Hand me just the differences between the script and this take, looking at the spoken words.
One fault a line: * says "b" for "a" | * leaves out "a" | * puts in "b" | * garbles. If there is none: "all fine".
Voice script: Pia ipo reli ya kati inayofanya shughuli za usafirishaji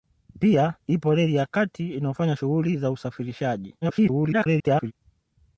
* garbles